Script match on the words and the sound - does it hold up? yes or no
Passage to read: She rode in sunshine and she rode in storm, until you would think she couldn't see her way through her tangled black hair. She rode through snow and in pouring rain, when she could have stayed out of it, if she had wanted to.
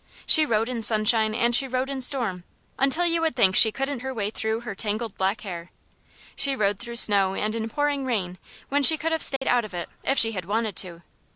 no